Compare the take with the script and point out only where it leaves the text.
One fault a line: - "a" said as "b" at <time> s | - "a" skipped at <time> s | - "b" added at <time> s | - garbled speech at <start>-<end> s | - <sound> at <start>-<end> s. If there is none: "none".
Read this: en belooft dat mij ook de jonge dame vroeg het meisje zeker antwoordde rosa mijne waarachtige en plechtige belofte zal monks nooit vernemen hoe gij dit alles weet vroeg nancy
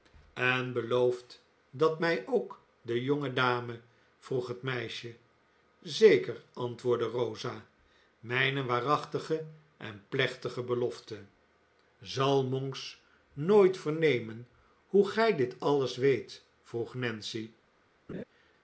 - laugh at 18.1-18.2 s